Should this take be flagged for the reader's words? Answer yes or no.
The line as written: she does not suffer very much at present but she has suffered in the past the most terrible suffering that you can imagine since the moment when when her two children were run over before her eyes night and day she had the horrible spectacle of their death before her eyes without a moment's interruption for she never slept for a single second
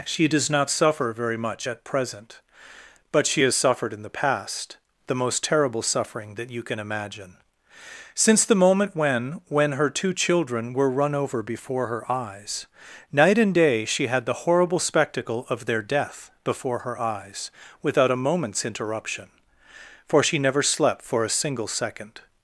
no